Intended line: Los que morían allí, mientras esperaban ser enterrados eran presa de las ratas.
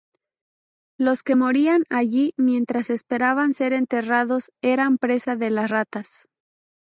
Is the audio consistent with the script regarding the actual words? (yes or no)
yes